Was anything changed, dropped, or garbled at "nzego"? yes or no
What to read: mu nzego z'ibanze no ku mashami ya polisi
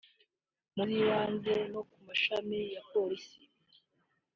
yes